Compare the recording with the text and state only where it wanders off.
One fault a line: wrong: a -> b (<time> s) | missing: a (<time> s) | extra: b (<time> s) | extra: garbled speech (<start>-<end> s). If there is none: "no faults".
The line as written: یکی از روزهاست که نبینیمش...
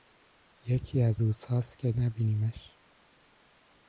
no faults